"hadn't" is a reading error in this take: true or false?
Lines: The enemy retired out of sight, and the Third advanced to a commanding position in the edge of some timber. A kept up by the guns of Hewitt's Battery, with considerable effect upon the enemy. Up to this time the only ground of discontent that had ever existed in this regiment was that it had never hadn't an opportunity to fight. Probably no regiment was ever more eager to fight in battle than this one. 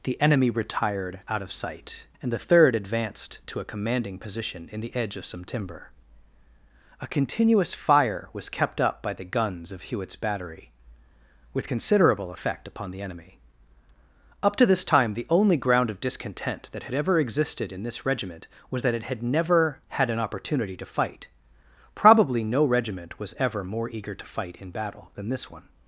true